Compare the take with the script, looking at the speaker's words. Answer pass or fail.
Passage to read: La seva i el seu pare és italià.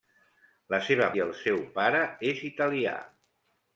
pass